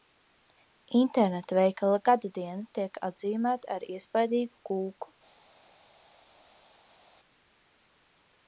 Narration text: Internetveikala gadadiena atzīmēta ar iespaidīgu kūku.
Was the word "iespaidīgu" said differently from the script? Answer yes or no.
no